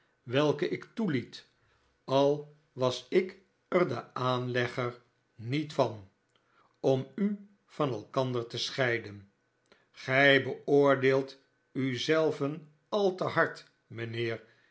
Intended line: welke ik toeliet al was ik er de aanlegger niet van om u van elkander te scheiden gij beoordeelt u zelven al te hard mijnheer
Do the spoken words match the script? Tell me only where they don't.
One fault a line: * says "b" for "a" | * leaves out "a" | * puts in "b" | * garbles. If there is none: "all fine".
all fine